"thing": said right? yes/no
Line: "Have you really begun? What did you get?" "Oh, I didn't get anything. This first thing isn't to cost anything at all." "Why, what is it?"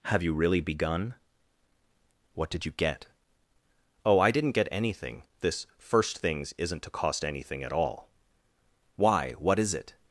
no